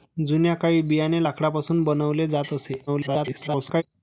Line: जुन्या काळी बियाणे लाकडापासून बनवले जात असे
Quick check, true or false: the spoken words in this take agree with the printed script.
false